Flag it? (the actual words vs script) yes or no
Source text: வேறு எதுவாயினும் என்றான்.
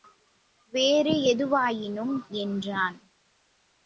no